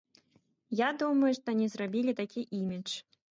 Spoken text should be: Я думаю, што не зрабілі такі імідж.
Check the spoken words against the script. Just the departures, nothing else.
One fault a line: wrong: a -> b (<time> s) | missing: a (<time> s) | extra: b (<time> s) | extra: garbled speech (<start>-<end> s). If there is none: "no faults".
no faults